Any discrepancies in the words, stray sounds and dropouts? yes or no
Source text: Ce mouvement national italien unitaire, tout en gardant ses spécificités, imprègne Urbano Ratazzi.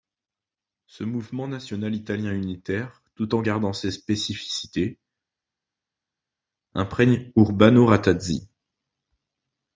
no